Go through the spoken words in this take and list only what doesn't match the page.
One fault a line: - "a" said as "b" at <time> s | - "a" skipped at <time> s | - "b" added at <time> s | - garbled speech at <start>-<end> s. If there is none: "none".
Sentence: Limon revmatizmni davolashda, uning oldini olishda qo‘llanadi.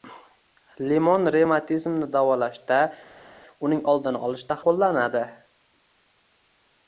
none